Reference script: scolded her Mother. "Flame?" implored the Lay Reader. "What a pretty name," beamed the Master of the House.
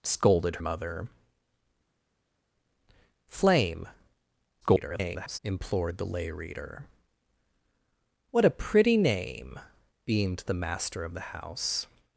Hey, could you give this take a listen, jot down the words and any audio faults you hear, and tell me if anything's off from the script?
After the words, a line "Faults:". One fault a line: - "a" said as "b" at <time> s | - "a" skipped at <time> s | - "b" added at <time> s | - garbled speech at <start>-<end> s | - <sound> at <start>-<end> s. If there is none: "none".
scolded Mother. "Flame?" [garbled] implored the Lay Reader. "What a pretty name," beamed the Master of the House.
Faults:
- "her" skipped at 0.6 s
- garbled speech at 4.6-5.4 s